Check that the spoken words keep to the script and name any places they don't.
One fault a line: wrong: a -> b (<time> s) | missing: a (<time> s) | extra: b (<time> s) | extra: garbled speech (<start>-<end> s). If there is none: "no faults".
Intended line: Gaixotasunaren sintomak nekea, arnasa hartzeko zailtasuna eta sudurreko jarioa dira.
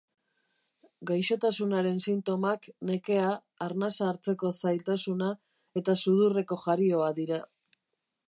no faults